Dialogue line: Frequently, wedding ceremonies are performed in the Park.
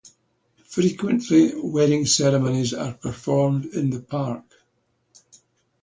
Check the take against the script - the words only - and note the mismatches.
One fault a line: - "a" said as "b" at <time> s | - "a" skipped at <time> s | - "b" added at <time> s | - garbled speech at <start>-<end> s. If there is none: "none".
none